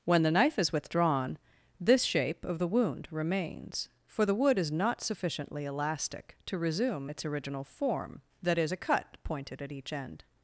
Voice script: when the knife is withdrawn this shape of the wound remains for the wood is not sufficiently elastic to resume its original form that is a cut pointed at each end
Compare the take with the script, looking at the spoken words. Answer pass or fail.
pass